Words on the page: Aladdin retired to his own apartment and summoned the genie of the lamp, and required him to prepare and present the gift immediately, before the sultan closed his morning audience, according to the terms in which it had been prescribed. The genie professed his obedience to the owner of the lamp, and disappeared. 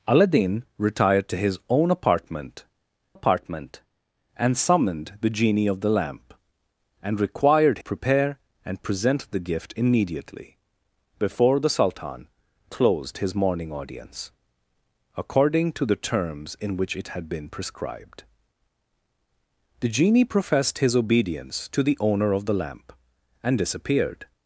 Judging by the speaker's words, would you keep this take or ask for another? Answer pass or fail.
fail